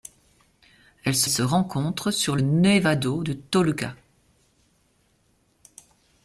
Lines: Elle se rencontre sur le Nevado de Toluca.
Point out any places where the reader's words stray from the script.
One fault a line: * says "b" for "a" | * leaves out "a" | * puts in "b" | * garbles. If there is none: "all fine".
* puts in "se"
* leaves out "le"